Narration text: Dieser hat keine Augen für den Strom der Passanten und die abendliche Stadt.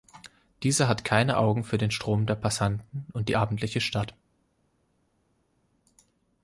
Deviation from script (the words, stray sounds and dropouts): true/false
false